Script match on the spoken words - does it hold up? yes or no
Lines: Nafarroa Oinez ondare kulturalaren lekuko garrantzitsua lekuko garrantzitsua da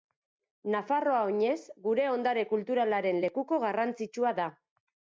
no